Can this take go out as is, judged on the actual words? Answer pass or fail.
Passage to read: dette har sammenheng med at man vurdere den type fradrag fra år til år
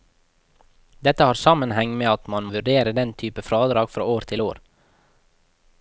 pass